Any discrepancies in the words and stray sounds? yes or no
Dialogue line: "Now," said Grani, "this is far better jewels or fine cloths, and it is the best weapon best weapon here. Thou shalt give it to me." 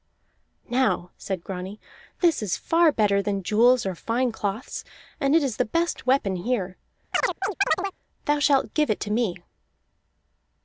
yes